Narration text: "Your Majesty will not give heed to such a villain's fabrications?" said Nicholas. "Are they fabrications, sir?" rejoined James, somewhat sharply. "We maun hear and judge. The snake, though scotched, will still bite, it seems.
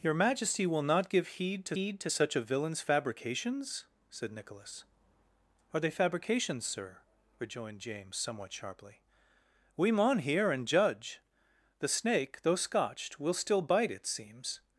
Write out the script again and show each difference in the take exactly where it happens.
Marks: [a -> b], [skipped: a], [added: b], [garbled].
"Your Majesty will not give heed to [added: heed to] such a villain's fabrications?" said Nicholas. "Are they fabrications, sir?" rejoined James, somewhat sharply. "We maun hear and judge. The snake, though scotched, will still bite, it seems.